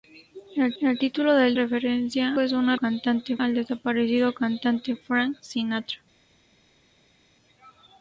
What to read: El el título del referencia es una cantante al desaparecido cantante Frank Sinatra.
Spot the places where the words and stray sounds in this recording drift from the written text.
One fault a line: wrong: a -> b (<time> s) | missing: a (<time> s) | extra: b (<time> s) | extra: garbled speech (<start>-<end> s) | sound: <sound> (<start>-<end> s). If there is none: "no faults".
no faults